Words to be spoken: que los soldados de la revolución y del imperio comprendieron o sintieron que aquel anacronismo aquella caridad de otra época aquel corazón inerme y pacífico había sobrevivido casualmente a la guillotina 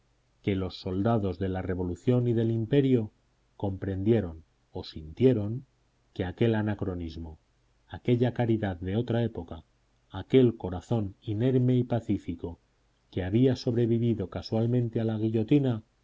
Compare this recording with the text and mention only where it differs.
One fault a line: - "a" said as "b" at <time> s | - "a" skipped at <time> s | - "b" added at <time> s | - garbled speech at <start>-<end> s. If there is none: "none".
- "que" added at 13.1 s